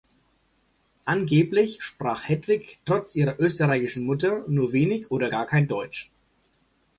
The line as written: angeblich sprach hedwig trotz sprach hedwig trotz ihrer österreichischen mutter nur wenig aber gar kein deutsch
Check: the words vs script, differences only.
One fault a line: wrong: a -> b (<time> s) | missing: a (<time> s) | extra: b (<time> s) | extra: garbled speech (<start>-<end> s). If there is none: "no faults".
missing: sprach hedwig trotz (3.2 s)
wrong: aber -> oder (5.1 s)